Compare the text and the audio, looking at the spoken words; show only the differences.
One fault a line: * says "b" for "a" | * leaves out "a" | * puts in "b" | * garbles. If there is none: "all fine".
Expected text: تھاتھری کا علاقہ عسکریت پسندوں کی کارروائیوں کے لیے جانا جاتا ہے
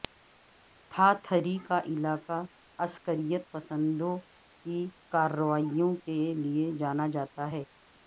all fine